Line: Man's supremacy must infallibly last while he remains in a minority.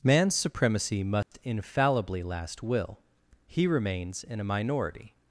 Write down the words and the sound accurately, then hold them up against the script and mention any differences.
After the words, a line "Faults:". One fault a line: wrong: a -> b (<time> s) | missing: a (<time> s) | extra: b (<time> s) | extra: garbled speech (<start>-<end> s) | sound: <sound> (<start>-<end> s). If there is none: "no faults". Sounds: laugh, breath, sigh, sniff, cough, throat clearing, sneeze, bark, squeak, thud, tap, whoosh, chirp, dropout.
Man's supremacy must infallibly last will he remains in a minority.
Faults:
sound: dropout (1.2-1.3 s)
wrong: while -> will (2.6 s)